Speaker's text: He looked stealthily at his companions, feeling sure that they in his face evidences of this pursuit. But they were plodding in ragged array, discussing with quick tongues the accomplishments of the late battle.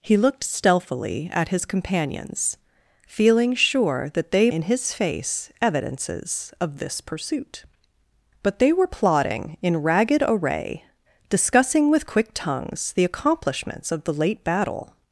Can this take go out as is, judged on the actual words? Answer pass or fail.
pass